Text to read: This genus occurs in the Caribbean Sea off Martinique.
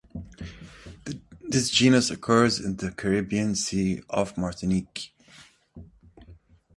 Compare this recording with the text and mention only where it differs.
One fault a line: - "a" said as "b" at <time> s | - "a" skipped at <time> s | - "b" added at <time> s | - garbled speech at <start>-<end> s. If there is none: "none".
none